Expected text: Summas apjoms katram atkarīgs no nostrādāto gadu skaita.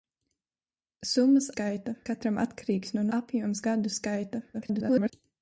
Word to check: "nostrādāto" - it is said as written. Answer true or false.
false